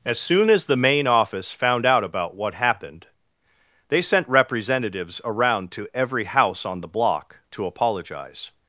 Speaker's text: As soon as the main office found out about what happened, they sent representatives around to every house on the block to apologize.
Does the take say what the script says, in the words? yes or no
yes